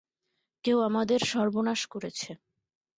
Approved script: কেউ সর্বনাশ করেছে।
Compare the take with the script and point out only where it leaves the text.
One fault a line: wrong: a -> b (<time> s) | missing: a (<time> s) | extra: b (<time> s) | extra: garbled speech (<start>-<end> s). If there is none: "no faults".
extra: আমাদের (0.8 s)